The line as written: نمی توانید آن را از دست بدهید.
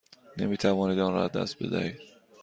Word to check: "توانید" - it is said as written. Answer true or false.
true